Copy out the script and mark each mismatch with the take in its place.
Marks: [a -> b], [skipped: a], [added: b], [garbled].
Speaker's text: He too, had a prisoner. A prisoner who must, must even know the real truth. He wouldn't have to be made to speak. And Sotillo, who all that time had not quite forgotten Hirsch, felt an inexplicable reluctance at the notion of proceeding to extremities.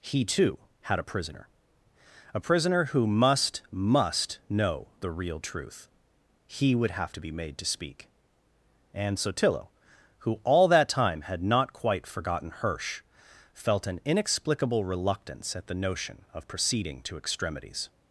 He too, had a prisoner. A prisoner who must, must [skipped: even] know the real truth. He [wouldn't -> would] have to be made to speak. And Sotillo, who all that time had not quite forgotten Hirsch, felt an inexplicable reluctance at the notion of proceeding to extremities.